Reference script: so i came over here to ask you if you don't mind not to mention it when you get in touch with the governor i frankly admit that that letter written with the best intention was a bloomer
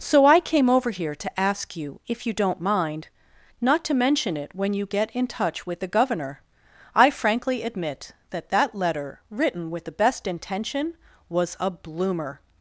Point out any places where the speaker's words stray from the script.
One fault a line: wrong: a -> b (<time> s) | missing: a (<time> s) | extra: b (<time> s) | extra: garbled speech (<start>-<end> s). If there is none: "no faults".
no faults